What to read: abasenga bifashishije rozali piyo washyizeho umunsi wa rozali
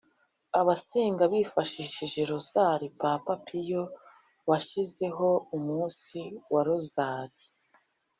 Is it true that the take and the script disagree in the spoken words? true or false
true